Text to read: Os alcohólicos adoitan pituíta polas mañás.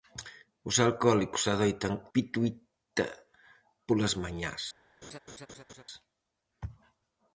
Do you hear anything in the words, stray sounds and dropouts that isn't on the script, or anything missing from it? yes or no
yes